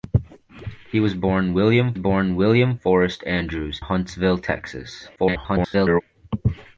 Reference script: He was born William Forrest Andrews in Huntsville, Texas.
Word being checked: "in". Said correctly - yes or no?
no